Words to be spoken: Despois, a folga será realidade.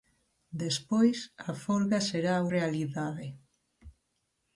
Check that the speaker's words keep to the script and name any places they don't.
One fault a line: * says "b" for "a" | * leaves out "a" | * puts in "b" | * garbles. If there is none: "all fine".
all fine